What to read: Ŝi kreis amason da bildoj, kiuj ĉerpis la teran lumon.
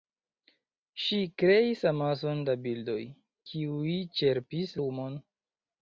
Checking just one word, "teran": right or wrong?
wrong